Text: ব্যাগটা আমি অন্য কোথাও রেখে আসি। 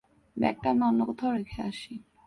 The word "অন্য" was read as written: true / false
true